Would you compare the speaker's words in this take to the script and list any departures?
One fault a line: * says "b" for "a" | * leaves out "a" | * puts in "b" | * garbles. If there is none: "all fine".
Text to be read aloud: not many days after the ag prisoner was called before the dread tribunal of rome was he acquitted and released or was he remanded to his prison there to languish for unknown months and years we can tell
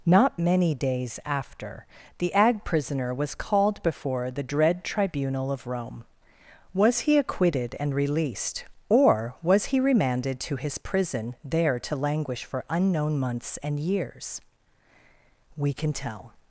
all fine